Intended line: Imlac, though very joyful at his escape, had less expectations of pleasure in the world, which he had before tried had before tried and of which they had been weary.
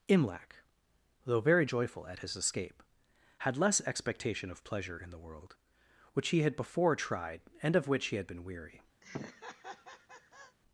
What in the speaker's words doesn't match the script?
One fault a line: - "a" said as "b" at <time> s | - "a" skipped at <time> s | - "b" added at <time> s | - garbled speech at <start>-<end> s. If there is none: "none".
- "expectations" said as "expectation" at 3.8 s
- "had before tried" skipped at 7.4 s
- "they" said as "he" at 8.1 s